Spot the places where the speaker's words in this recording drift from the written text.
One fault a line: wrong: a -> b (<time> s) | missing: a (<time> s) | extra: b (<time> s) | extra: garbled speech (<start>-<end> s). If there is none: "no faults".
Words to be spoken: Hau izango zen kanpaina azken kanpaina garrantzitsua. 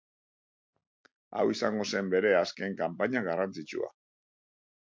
wrong: kanpaina -> bere (2.1 s)